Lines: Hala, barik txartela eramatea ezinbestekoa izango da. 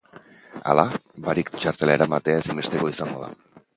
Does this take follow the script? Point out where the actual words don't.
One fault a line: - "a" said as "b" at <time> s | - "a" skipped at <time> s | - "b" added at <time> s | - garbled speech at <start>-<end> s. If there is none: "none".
none